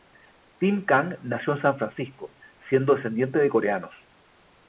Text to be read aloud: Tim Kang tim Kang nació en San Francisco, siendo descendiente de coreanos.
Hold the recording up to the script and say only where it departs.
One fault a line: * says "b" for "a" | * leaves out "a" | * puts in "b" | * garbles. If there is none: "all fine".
* leaves out "tim Kang"